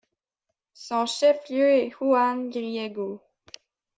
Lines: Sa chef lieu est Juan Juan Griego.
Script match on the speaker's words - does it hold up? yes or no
no